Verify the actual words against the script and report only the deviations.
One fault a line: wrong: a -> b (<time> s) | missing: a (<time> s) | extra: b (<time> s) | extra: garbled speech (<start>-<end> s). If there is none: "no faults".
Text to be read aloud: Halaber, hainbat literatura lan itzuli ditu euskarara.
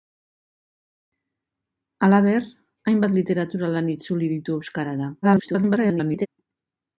extra: garbled speech (5.2-6.3 s)